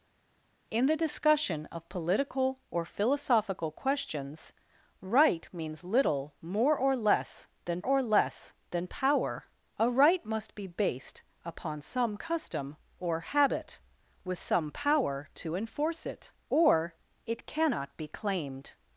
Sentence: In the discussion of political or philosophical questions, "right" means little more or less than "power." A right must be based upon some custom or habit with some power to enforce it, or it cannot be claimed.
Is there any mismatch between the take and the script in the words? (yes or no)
yes